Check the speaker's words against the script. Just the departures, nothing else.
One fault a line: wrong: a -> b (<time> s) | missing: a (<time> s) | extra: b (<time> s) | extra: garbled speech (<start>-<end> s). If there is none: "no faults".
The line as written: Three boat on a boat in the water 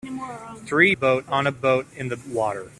no faults